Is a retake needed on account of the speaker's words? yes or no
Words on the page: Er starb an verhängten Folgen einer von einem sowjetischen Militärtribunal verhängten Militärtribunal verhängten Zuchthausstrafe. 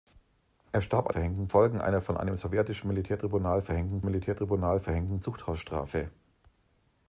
no